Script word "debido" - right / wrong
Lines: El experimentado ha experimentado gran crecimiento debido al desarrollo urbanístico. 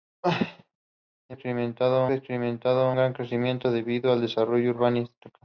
right